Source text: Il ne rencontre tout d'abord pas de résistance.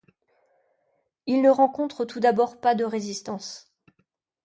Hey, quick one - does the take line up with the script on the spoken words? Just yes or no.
yes